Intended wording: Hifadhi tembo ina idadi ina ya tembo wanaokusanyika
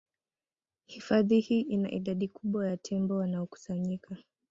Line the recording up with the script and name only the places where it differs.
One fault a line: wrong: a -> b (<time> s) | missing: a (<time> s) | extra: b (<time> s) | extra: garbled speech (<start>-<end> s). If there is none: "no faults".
wrong: tembo -> hii (1.4 s)
wrong: ina -> kubwa (2.3 s)